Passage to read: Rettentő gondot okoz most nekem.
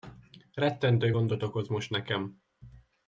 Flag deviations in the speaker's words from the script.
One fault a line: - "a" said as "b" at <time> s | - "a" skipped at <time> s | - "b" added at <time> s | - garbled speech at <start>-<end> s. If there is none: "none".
none